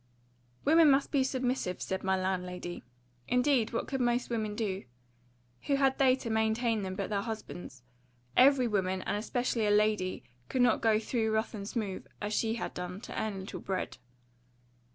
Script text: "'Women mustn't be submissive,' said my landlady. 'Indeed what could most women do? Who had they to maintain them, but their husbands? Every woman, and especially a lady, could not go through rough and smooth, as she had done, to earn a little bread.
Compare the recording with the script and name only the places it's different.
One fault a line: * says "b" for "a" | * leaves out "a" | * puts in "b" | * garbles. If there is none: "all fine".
* says "must" for "mustn't"